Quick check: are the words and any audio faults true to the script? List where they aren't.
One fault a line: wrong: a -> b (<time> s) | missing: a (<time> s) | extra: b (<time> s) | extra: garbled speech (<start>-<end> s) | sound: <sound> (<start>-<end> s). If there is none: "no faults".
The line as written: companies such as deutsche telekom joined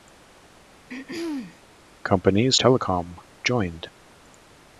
sound: throat clearing (0.9-1.6 s)
missing: such as deutsche (2.6 s)